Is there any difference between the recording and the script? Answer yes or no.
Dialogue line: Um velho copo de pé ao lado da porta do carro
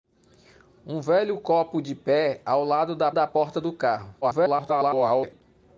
yes